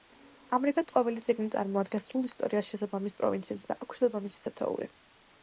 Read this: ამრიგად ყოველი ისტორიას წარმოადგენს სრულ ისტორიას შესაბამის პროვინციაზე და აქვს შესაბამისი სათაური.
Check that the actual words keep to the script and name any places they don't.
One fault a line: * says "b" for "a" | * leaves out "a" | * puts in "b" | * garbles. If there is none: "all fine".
* says "წიგნი" for "ისტორიას"